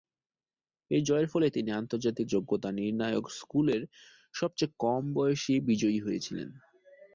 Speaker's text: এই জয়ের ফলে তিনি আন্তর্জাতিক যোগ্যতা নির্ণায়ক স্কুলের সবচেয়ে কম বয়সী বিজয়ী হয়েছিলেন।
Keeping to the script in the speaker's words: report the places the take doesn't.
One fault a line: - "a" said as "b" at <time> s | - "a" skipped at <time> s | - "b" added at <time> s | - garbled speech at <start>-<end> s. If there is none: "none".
none